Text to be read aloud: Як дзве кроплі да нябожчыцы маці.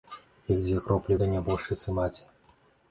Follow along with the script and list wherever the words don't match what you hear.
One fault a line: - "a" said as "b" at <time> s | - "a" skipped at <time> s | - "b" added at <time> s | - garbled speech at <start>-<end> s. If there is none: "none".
none